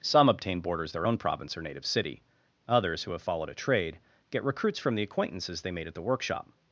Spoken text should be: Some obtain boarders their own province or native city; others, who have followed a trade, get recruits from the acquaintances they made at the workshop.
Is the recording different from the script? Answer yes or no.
no